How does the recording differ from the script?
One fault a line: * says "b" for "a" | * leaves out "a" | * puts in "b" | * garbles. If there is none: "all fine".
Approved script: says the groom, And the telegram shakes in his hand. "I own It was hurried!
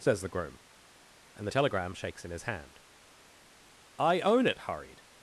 * leaves out "was"